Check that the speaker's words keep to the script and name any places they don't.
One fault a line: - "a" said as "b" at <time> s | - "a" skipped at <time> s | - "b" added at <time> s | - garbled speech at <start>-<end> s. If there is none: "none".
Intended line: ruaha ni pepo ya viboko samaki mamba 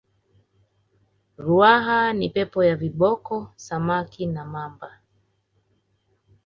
- "na" added at 4.3 s